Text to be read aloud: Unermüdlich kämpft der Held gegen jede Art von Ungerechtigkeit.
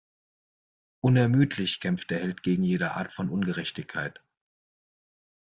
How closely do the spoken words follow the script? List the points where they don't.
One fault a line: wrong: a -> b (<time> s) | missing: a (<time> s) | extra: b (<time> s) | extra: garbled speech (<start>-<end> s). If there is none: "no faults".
no faults